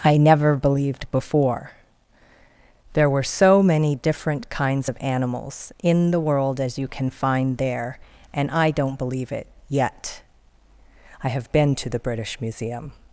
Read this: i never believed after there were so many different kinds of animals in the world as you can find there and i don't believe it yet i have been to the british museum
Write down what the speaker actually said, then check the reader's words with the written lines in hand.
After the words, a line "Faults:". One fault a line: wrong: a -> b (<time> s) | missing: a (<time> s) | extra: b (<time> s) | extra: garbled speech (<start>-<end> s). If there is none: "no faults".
i never believed before there were so many different kinds of animals in the world as you can find there and i don't believe it yet i have been to the british museum
Faults:
wrong: after -> before (1.1 s)